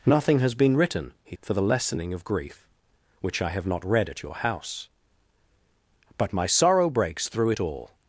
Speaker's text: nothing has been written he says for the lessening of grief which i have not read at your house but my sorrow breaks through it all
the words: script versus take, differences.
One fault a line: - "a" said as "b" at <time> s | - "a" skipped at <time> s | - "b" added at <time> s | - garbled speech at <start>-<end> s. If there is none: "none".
- "says" skipped at 1.4 s